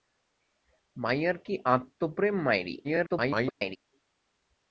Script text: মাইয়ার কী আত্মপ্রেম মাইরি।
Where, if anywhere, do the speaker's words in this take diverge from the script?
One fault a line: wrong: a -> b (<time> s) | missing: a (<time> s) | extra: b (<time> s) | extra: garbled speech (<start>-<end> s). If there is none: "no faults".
extra: garbled speech (2.8-3.8 s)